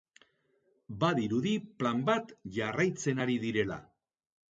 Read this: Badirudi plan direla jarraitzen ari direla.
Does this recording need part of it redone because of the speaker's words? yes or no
yes